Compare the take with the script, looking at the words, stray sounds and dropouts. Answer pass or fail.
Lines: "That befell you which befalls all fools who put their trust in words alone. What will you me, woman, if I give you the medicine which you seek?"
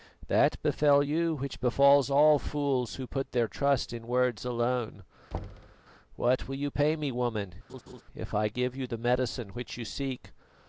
fail